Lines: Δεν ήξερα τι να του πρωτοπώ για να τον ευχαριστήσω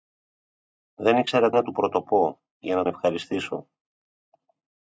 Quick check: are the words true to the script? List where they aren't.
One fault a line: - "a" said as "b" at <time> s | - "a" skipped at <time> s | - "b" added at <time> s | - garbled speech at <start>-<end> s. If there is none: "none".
- "τι" skipped at 1.5 s
- "τον" skipped at 2.8 s